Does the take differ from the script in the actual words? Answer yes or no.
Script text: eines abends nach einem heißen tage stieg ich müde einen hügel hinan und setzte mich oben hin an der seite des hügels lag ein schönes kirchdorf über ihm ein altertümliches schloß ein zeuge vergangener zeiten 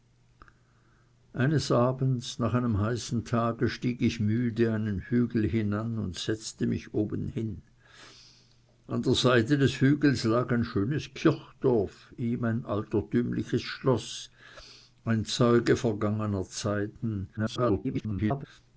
yes